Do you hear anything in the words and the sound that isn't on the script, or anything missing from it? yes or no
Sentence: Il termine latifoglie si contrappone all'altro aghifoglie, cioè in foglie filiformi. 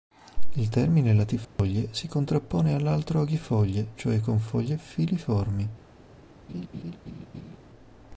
yes